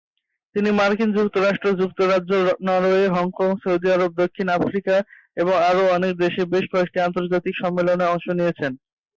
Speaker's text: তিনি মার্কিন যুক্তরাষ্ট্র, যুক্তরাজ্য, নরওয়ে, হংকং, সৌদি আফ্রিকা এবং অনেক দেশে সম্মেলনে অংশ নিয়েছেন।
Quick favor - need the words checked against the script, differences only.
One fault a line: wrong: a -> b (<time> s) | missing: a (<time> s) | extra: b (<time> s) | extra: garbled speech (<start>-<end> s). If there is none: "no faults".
extra: আরব দক্ষিণ (4.0 s)
extra: আরও (5.7 s)
extra: বেশ কয়েকটি আন্তর্জাতিক (6.5 s)